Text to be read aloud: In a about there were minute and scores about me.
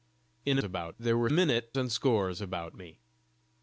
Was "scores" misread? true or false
false